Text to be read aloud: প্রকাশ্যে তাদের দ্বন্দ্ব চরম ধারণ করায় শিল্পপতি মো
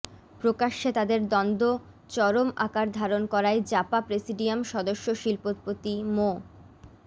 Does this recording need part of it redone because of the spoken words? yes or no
yes